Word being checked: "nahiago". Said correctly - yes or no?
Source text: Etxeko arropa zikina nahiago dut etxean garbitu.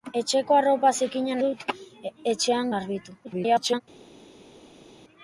no